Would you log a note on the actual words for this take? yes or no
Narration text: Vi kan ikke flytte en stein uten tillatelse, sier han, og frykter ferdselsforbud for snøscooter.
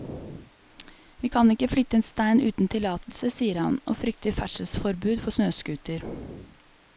no